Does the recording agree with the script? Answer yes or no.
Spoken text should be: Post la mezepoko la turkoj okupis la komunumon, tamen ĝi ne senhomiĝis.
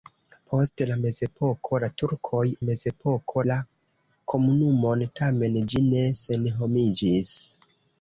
no